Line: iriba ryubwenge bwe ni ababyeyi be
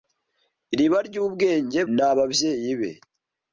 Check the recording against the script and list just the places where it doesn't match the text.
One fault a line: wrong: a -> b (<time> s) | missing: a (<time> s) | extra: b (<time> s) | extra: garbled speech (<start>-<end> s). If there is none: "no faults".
missing: bwe (1.8 s)